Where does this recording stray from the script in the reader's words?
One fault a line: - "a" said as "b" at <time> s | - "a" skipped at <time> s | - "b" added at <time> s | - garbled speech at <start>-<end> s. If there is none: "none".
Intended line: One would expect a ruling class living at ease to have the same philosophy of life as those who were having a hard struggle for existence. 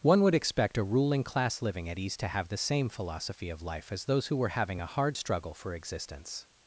none